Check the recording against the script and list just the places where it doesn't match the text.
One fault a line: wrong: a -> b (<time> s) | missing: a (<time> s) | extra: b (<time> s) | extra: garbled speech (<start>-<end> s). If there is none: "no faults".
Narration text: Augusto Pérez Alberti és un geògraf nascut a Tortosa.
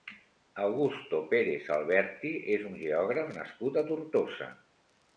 no faults